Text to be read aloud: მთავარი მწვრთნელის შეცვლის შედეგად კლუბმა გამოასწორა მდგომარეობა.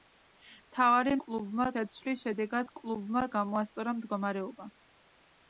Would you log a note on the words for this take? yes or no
yes